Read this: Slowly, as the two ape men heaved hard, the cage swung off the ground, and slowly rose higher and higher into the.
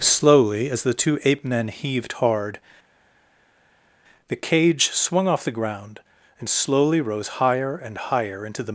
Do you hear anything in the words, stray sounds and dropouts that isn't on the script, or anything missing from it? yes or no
no